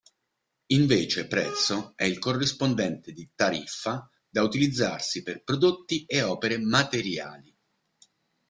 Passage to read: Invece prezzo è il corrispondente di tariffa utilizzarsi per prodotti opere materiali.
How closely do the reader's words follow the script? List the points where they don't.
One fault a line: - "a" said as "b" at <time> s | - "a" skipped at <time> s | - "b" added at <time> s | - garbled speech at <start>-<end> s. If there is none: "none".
- "da" added at 4.3 s
- "e" added at 6.0 s